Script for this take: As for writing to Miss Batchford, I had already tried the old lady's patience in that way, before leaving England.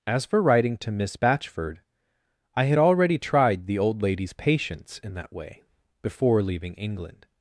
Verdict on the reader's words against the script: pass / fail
pass